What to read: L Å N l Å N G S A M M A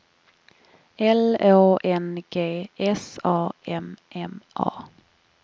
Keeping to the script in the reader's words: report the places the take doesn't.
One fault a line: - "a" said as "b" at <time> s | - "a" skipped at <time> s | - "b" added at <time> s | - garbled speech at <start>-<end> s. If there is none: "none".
- "l Å N" skipped at 2.2 s